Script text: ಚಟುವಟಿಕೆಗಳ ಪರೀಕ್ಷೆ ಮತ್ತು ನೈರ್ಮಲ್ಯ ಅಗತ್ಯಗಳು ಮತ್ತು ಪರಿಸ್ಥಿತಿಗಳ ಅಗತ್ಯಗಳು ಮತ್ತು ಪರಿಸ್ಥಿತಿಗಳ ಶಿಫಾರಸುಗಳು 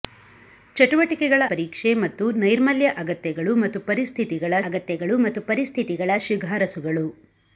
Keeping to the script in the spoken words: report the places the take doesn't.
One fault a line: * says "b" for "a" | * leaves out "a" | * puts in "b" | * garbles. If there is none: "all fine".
all fine